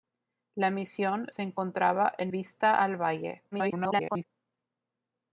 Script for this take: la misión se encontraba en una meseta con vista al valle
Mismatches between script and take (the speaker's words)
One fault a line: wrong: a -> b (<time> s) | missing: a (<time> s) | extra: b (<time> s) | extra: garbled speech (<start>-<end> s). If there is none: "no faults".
missing: una meseta con (2.3 s)
extra: garbled speech (3.5-4.2 s)